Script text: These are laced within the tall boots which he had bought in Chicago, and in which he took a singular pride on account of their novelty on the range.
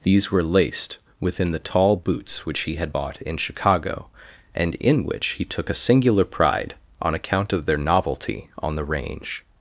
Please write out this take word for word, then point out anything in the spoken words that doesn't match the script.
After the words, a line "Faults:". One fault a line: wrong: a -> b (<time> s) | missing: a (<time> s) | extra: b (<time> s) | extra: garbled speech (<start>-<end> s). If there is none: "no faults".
These were laced within the tall boots which he had bought in Chicago, and in which he took a singular pride on account of their novelty on the range.
Faults:
wrong: are -> were (0.3 s)